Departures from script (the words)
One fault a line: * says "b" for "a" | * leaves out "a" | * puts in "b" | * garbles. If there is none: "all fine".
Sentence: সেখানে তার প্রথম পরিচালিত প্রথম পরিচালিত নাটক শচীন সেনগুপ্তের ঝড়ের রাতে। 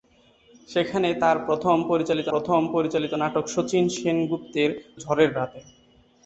all fine